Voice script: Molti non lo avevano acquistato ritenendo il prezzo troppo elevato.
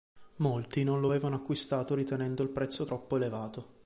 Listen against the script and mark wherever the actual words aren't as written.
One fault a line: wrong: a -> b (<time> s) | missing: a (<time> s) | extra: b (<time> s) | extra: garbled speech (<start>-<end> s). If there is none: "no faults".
no faults